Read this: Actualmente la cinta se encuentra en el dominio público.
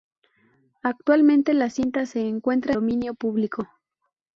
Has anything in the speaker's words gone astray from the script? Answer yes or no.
yes